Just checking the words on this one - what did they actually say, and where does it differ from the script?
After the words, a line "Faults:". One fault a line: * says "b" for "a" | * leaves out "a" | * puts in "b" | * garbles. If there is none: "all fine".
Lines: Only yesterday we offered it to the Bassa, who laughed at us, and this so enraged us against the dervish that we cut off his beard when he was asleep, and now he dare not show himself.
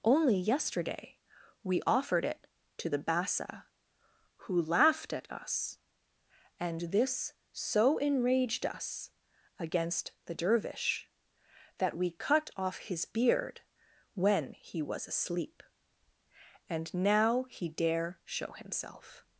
Only yesterday we offered it to the Bassa, who laughed at us, and this so enraged us against the dervish that we cut off his beard when he was asleep, and now he dare show himself.
Faults:
* leaves out "not"